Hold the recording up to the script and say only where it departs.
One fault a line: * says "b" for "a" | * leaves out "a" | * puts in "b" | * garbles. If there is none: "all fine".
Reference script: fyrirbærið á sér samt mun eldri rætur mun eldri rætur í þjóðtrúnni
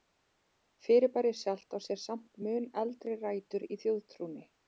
* puts in "sjálft"
* leaves out "mun eldri rætur"